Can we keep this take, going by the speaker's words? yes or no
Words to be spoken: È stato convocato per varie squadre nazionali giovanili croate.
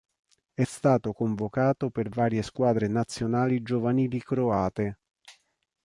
yes